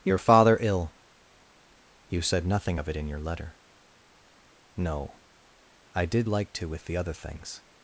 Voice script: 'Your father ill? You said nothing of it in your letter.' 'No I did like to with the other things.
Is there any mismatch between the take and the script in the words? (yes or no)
no